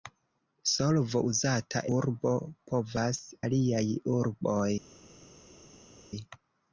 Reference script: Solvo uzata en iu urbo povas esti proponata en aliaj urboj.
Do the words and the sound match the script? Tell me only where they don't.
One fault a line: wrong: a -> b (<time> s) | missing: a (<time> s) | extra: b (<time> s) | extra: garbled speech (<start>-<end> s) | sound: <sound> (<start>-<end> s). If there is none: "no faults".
missing: en iu (1.8 s)
missing: esti proponata en (3.2 s)